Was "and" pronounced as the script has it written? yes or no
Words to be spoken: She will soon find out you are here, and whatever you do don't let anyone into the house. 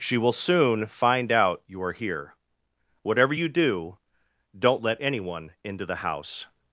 no